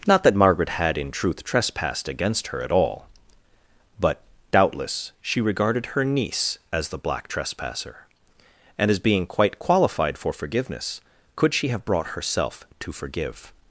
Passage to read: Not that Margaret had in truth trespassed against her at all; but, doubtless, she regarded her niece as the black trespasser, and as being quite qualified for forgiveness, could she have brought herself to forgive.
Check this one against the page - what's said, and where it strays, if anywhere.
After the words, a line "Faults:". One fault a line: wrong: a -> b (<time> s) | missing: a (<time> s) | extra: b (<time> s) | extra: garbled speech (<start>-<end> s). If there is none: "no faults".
Not that Margaret had in truth trespassed against her at all; but, doubtless, she regarded her niece as the black trespasser, and as being quite qualified for forgiveness, could she have brought herself to forgive.
Faults:
no faults